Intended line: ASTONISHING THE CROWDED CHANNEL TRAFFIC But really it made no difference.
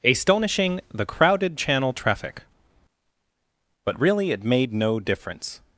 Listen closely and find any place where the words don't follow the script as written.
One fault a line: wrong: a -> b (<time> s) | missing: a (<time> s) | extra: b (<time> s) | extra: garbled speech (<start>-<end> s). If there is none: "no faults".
no faults